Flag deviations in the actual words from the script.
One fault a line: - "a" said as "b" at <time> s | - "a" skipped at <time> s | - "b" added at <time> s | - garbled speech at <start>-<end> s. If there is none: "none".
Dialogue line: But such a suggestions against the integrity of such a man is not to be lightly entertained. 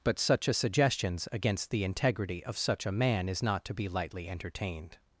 none